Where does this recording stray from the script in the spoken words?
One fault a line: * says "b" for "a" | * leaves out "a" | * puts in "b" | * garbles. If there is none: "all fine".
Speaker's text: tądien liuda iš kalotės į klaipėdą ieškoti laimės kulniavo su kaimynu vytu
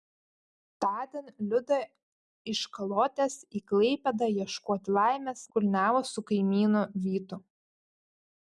all fine